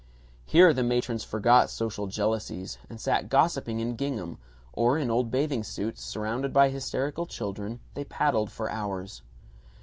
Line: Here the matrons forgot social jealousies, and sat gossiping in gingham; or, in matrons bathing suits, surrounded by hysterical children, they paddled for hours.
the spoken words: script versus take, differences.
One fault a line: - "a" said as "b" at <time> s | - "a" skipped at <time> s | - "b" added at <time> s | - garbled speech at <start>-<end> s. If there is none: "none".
- "matrons" said as "old" at 5.1 s